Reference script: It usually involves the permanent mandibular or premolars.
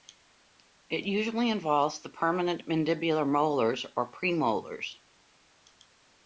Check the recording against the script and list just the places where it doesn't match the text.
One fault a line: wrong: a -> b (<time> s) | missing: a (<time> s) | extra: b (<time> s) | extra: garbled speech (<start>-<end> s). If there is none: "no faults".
extra: molars (3.2 s)